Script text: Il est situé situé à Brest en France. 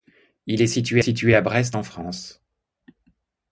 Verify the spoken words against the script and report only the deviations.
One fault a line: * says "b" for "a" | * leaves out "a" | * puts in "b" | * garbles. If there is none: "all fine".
all fine